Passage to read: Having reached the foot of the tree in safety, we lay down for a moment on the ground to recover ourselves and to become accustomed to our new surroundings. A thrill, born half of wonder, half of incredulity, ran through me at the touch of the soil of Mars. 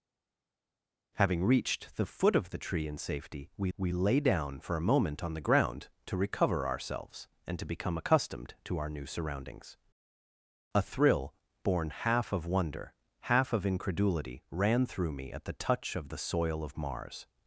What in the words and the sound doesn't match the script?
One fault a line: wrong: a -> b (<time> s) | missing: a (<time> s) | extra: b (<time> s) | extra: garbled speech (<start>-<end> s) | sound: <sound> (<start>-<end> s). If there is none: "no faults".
extra: we (3.8 s)